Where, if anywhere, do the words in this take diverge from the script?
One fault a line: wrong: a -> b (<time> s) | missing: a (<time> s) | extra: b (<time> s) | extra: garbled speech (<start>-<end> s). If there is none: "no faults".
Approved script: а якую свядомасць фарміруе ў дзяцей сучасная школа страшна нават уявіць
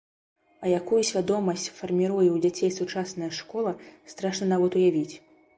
no faults